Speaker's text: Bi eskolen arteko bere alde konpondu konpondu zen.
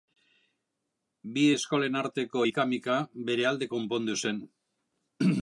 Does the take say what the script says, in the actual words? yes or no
no